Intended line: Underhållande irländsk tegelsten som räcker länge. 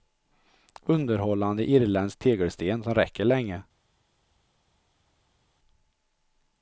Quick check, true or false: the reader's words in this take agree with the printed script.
true